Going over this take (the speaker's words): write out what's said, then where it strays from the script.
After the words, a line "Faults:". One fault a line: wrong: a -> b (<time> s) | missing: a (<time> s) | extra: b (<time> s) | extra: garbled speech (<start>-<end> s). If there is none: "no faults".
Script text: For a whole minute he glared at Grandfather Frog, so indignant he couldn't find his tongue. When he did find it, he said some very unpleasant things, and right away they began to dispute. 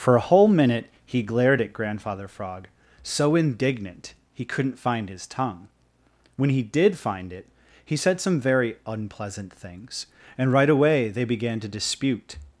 For a whole minute he glared at Grandfather Frog, so indignant he couldn't find his tongue. When he did find it, he said some very unpleasant things, and right away they began to dispute.
Faults:
no faults